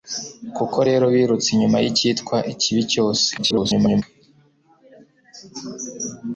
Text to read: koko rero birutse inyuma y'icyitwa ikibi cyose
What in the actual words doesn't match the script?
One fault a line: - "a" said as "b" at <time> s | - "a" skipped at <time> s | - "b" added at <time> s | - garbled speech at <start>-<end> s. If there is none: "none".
- garbled speech at 3.4-4.0 s